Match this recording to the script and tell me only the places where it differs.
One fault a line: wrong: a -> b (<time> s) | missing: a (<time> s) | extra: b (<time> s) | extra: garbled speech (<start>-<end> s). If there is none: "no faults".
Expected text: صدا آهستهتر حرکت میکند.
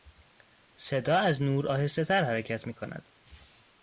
extra: از نور (1.2 s)